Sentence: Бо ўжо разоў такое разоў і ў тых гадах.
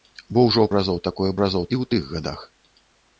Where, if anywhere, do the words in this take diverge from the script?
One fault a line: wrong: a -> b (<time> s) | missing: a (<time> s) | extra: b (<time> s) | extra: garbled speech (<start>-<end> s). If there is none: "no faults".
no faults